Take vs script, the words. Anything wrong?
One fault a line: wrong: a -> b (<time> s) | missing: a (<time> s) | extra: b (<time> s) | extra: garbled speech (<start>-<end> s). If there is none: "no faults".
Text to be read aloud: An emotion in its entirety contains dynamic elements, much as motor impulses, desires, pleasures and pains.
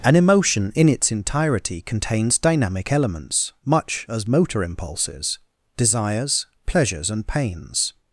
no faults